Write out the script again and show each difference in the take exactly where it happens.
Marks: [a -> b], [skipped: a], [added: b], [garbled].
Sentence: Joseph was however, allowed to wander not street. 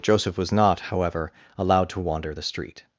Joseph was [added: not] however, allowed to wander [not -> the] street.